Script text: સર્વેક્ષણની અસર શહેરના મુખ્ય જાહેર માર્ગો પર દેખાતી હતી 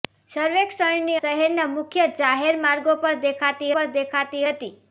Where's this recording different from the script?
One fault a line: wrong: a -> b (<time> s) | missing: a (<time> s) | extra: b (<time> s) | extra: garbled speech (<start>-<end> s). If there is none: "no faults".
missing: અસર (1.2 s)
extra: પર દેખાતી (3.7 s)